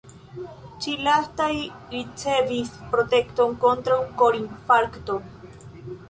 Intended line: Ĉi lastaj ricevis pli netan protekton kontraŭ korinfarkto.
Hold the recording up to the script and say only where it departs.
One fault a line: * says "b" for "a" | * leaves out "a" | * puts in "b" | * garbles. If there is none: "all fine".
* leaves out "pli netan"